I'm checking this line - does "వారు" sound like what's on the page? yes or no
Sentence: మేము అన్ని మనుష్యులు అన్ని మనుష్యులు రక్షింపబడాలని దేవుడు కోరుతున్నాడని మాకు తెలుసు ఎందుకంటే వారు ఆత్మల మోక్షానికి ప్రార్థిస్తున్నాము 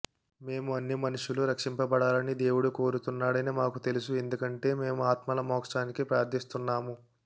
no